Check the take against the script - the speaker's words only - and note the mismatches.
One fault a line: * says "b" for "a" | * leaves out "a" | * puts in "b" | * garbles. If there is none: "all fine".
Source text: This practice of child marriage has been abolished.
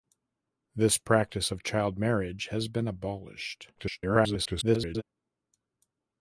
* garbles